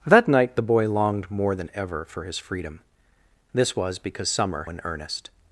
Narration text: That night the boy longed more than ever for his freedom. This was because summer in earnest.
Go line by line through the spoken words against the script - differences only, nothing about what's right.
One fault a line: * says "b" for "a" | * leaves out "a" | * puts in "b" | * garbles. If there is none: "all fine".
all fine